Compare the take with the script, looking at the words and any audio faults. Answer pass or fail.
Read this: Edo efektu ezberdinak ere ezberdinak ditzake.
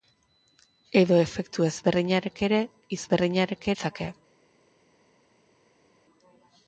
pass